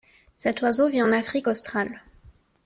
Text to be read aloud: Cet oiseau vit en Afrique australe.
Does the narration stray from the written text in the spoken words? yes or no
no